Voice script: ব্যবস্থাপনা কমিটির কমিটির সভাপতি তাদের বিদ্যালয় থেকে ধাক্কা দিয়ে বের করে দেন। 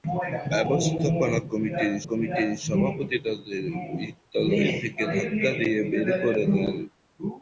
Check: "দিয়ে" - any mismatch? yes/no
no